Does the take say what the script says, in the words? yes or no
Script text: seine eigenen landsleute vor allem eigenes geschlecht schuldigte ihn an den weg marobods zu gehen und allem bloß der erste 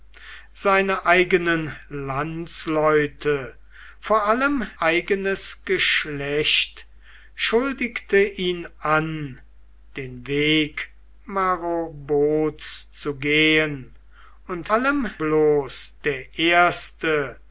yes